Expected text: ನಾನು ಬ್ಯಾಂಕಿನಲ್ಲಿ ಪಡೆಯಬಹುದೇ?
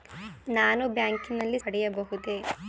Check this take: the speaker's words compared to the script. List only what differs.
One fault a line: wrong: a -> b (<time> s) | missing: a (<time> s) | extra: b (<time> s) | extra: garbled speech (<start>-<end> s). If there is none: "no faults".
no faults